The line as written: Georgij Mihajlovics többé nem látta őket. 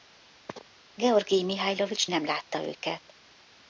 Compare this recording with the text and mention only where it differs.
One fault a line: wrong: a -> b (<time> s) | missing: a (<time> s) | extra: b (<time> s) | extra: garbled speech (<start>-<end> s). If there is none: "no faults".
missing: többé (2.1 s)